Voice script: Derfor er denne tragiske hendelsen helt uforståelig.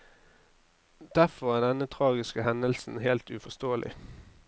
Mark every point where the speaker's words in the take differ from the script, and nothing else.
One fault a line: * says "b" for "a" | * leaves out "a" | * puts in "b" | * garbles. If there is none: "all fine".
all fine